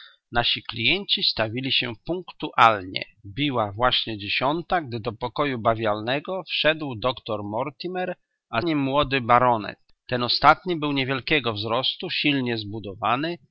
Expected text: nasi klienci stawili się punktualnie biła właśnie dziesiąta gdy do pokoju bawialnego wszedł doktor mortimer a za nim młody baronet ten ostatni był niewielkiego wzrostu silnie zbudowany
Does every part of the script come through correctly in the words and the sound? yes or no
no